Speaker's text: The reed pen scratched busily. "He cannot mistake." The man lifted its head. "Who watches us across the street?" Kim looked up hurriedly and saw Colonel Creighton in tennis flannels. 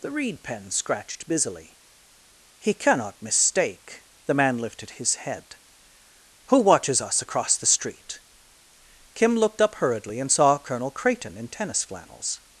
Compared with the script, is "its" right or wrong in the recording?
wrong